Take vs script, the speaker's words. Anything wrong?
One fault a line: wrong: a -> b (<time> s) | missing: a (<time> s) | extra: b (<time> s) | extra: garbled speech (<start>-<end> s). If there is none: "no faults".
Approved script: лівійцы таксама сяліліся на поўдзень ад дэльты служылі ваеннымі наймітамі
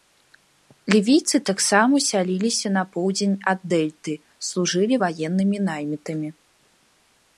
no faults